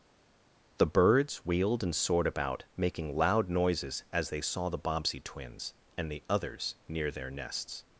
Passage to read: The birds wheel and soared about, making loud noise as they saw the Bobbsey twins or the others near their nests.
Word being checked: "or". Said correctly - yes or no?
no